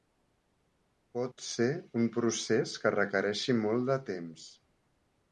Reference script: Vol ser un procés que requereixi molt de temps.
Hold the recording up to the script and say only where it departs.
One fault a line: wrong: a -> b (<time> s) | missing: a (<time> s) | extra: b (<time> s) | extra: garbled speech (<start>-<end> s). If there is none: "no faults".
wrong: Vol -> Pot (1.2 s)